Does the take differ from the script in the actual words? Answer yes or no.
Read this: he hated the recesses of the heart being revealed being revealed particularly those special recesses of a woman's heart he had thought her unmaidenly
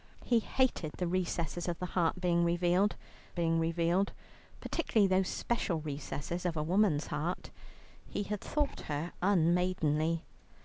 no